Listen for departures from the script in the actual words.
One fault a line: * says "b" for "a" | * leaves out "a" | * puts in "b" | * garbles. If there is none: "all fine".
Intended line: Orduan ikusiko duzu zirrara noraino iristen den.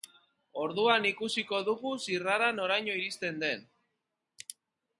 * says "dugu" for "duzu"